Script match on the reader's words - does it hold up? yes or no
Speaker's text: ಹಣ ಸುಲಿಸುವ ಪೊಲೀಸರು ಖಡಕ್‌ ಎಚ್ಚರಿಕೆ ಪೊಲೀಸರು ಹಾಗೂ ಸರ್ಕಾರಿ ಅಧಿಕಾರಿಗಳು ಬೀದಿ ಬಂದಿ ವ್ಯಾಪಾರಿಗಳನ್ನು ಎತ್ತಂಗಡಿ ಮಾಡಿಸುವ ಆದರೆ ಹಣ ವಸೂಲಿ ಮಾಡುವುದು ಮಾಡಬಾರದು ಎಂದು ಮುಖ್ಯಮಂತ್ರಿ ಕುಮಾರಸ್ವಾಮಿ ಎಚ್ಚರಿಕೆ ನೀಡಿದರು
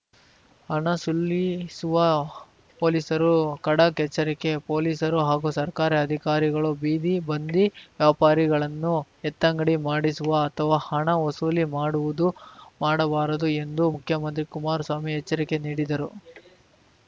no